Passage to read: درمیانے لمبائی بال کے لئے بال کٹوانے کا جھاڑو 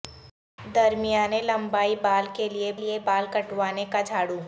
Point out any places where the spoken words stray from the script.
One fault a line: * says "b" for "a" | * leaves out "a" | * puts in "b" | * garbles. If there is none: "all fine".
* puts in "لئے"